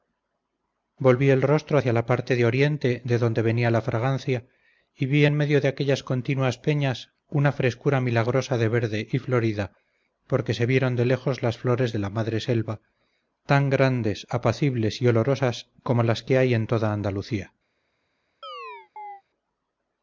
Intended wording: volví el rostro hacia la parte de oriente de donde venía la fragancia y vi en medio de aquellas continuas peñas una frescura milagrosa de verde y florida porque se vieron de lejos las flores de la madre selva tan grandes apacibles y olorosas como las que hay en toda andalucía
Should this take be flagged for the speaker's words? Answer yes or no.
no